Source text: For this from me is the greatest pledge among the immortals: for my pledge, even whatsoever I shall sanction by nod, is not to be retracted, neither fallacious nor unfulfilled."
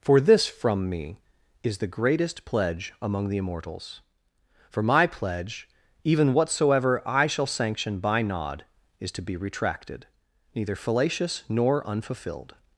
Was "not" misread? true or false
true